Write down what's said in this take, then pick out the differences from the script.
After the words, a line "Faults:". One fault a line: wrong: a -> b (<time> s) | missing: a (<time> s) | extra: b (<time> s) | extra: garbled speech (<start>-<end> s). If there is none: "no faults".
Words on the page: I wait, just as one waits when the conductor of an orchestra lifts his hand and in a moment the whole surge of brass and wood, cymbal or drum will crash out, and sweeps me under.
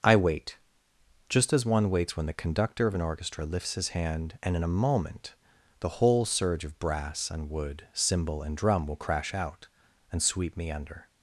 I wait, just as one waits when the conductor of an orchestra lifts his hand and in a moment the whole surge of brass and wood, cymbal and drum will crash out, and sweep me under.
Faults:
wrong: or -> and (8.4 s)
wrong: sweeps -> sweep (10.2 s)